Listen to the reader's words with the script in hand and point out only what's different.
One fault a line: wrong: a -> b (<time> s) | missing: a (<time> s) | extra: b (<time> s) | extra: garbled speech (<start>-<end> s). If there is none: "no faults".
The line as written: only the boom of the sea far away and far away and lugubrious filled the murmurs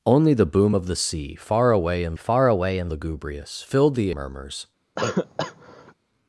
no faults